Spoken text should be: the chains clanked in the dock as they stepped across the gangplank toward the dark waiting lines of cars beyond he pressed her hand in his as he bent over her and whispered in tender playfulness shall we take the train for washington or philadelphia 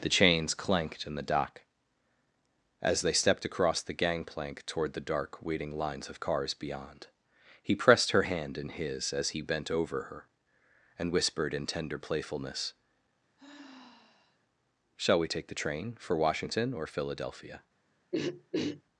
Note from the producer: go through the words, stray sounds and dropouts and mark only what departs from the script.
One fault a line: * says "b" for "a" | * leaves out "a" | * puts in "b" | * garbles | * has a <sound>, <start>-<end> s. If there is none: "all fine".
* has a sigh, 13.4-14.4 s
* has a throat clearing, 18.1-18.8 s